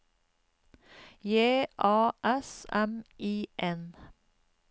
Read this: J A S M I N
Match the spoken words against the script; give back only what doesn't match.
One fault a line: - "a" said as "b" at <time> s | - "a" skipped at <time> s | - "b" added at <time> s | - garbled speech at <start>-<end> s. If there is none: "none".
none